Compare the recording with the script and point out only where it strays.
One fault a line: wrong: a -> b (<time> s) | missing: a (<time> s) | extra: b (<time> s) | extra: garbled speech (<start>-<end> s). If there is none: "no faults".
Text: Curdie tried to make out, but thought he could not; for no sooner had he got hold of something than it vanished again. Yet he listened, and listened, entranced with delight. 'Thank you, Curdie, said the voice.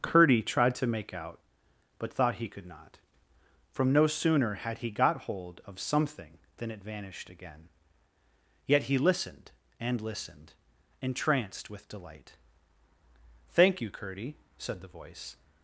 wrong: for -> from (3.7 s)